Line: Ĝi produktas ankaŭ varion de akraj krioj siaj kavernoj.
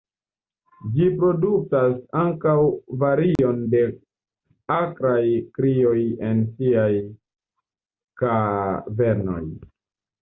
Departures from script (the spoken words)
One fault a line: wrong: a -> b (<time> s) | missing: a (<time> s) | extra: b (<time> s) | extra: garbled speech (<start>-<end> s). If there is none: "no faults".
extra: en (6.3 s)